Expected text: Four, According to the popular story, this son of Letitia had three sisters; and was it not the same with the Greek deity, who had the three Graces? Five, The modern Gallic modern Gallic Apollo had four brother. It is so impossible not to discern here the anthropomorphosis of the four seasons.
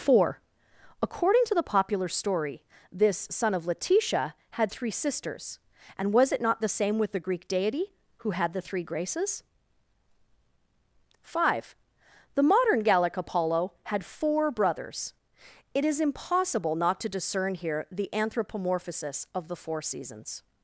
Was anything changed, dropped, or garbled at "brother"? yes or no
yes